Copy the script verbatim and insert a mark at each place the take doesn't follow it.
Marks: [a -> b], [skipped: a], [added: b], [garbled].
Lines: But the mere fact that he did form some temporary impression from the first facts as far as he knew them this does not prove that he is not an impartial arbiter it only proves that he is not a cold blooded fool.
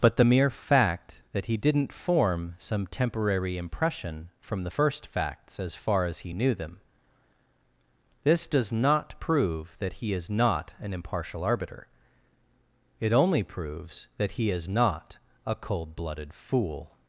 But the mere fact that he [did -> didn't] form some temporary impression from the first facts as far as he knew them this does not prove that he is not an impartial arbiter it only proves that he is not a cold blooded fool.